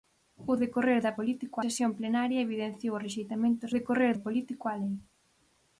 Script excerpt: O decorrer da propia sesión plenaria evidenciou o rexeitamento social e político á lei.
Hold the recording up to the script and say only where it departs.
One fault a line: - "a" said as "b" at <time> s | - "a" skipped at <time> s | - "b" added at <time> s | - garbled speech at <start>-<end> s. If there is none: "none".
- "propia" said as "político" at 1.2 s
- "social" said as "decorrer" at 3.8 s